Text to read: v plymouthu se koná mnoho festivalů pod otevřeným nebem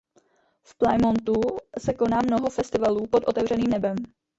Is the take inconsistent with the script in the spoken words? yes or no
no